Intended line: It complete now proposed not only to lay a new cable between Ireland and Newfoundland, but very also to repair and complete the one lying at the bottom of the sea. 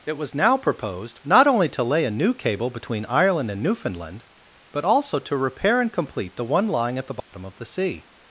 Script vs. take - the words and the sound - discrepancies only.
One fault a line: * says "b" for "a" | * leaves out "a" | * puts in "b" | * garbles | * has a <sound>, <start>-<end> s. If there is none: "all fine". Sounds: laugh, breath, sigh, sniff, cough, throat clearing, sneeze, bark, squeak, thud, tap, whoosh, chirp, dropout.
* says "was" for "complete"
* leaves out "very"
* has a dropout, 7.2-7.3 s